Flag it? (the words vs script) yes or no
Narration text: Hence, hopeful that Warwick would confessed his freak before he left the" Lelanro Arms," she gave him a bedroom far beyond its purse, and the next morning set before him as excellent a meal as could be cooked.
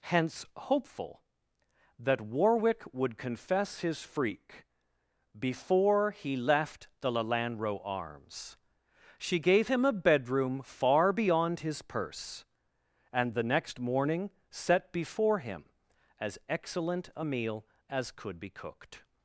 yes